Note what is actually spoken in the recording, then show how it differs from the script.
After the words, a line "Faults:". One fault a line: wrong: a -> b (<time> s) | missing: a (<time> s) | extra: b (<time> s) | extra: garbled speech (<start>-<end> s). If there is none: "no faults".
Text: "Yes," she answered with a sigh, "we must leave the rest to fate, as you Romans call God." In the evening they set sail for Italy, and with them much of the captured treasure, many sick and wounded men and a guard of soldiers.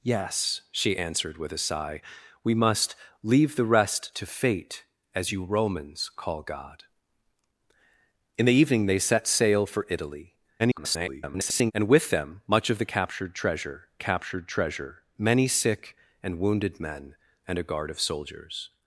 "Yes," she answered with a sigh, "we must leave the rest to fate, as you Romans call God." In the evening they set sail for Italy, [garbled] and with them much of the captured treasure captured treasure, many sick and wounded men and a guard of soldiers.
Faults:
extra: garbled speech (10.6-11.7 s)
extra: captured treasure (14.0 s)